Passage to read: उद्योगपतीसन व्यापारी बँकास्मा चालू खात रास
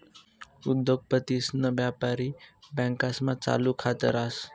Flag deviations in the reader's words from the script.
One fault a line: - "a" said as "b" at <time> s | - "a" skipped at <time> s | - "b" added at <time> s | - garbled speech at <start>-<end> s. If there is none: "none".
none